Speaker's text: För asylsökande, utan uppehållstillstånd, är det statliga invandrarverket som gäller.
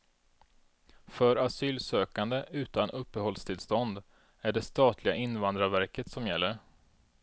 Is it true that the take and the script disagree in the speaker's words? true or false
false